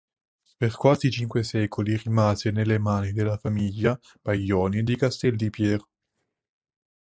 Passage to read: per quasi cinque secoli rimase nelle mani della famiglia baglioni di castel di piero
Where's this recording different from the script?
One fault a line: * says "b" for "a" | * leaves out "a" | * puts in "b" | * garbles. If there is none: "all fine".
all fine